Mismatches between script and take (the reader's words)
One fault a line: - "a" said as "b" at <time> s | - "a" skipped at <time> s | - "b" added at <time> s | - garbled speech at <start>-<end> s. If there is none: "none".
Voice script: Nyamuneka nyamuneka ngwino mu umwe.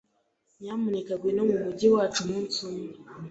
- "nyamuneka" skipped at 1.1 s
- "mujyi wacu umunsi" added at 1.6 s